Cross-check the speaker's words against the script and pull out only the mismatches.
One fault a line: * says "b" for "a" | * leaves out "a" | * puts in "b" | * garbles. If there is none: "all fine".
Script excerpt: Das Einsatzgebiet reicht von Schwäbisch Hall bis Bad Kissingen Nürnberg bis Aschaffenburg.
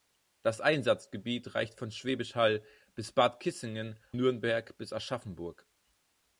all fine